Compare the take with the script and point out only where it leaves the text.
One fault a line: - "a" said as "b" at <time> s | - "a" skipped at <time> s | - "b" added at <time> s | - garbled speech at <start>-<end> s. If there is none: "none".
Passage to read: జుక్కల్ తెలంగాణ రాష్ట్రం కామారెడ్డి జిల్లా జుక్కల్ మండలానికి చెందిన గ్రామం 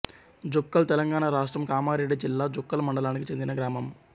none